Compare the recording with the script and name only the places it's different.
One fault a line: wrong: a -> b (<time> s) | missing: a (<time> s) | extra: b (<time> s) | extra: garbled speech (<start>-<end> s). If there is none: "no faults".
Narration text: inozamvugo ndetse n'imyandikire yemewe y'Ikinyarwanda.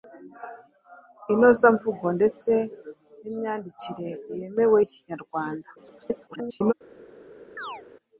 extra: garbled speech (5.8-6.7 s)